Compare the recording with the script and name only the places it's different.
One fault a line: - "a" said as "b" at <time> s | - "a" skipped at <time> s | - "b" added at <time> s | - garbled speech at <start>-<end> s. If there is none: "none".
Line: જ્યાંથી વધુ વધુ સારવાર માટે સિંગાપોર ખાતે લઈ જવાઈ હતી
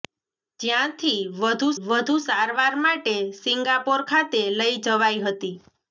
none